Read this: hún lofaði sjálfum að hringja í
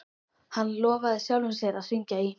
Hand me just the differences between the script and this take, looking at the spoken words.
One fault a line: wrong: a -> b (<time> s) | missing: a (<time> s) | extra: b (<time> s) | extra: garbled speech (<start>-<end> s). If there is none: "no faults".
wrong: hún -> hann (0.6 s)
extra: sér (1.6 s)